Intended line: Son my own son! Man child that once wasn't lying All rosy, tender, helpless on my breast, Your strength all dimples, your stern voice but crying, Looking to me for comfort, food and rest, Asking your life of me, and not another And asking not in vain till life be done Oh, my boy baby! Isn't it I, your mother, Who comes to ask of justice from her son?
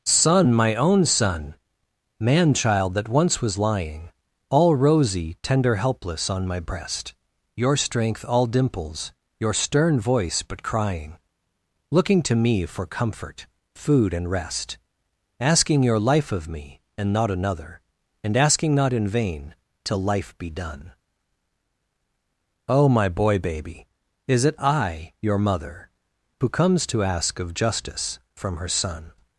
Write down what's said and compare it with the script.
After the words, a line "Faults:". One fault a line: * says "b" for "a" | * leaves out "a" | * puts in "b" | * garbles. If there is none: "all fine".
Son my own son! Man child that once was lying All rosy, tender, helpless on my breast, Your strength all dimples, your stern voice but crying, Looking to me for comfort, food and rest, Asking your life of me, and not another And asking not in vain till life be done Oh, my boy baby! Is it I, your mother, Who comes to ask of justice from her son?
Faults:
* says "was" for "wasn't"
* says "Is" for "Isn't"